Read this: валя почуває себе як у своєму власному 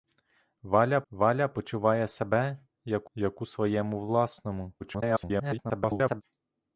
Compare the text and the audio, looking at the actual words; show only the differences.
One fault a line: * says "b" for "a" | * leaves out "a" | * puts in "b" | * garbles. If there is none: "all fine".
* puts in "валя"
* puts in "як"
* garbles